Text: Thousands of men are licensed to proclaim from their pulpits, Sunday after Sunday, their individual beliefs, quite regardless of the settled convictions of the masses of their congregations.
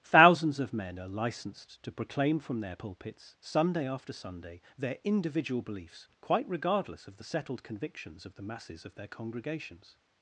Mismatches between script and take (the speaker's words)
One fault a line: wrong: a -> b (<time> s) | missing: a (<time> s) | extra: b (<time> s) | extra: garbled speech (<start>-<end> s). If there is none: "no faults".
no faults